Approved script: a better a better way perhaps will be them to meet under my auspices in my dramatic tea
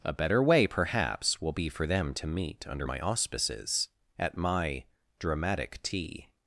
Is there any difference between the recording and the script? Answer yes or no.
yes